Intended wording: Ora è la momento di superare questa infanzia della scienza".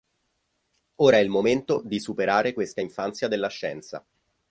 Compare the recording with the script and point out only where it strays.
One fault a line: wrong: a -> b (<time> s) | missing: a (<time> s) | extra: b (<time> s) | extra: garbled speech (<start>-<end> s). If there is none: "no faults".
wrong: la -> il (1.2 s)